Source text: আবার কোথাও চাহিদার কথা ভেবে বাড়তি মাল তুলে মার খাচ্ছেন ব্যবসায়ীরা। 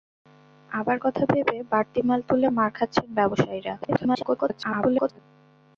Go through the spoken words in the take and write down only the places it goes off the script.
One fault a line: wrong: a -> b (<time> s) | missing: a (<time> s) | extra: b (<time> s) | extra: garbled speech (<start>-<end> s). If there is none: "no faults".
missing: কোথাও চাহিদার (1.0 s)
extra: garbled speech (3.8-5.2 s)